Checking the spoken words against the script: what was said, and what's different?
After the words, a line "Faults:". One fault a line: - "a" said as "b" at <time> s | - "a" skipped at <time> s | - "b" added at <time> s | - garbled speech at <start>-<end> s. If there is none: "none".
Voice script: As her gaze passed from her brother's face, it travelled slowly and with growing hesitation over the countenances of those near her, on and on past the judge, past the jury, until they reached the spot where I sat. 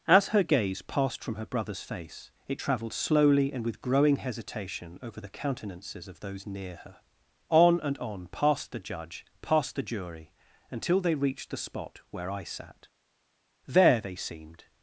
As her gaze passed from her brother's face, it travelled slowly and with growing hesitation over the countenances of those near her, on and on past the judge, past the jury, until they reached the spot where I sat. There they seemed
Faults:
- "There they seemed" added at 13.7 s